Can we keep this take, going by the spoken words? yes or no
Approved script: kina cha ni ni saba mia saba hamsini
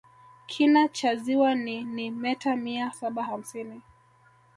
no